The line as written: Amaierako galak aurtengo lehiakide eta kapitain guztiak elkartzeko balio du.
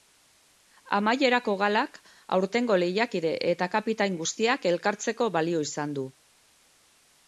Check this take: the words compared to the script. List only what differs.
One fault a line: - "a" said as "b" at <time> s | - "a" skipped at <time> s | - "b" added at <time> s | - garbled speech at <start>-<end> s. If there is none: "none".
- "izan" added at 5.7 s